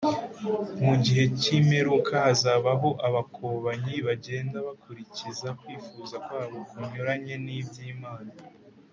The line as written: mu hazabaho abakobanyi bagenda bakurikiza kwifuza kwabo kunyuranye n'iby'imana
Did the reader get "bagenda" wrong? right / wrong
right